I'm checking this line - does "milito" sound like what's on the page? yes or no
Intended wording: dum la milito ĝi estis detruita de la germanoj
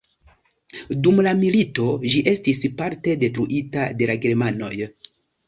yes